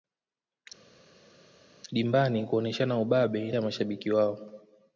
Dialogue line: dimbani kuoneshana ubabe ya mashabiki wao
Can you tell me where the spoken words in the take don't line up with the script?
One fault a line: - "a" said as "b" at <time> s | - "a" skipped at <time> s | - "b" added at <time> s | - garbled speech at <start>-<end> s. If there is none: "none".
none